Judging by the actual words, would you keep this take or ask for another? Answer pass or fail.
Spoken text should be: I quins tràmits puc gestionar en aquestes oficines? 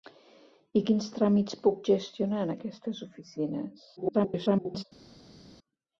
fail